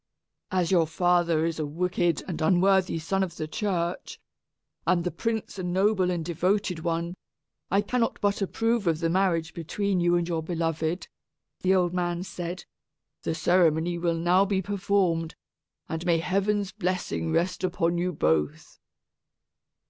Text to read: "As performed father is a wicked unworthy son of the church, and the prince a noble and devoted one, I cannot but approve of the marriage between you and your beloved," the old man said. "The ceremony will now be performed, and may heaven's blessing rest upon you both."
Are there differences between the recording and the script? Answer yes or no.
yes